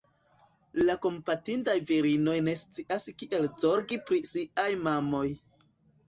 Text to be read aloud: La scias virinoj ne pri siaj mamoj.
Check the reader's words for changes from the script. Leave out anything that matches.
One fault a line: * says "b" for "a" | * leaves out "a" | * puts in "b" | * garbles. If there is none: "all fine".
* says "kompatindaj" for "scias"
* puts in "scias kiel zorgi"